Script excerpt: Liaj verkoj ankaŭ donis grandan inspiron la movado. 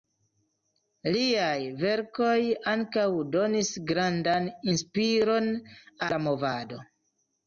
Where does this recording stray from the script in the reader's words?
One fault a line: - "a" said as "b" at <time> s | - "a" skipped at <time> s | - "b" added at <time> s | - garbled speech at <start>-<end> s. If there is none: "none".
none